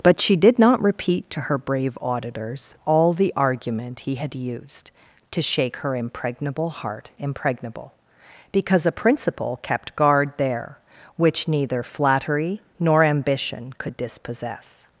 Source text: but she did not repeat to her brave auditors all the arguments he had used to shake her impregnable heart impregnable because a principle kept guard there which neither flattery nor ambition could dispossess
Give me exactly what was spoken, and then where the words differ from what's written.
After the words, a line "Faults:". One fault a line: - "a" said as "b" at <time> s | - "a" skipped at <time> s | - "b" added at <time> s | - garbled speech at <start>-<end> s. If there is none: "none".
but she did not repeat to her brave auditors all the argument he had used to shake her impregnable heart impregnable because a principle kept guard there which neither flattery nor ambition could dispossess
Faults:
- "arguments" said as "argument" at 3.4 s